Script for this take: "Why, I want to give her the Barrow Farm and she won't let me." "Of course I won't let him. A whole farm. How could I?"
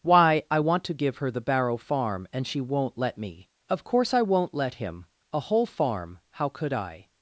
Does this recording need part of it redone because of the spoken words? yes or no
no